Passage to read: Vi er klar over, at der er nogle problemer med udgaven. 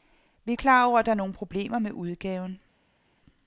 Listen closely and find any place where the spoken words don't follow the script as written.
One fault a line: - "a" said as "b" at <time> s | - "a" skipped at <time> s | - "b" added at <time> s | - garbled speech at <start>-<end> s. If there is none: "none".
none